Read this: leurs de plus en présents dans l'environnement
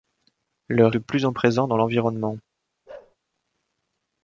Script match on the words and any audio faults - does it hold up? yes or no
no